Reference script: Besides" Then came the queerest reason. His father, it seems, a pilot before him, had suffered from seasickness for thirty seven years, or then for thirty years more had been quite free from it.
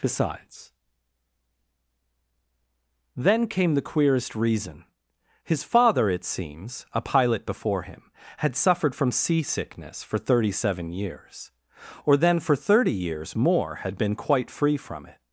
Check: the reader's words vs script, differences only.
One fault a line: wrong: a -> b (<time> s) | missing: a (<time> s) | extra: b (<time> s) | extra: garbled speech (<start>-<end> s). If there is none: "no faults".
no faults